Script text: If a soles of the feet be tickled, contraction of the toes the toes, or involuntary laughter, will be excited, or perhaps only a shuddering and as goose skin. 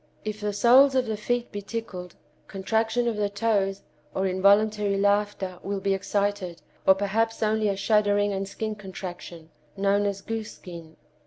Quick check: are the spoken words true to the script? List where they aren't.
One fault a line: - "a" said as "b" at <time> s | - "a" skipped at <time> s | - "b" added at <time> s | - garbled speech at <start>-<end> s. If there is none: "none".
- "a" said as "the" at 0.4 s
- "the toes" skipped at 3.8 s
- "skin contraction known" added at 8.5 s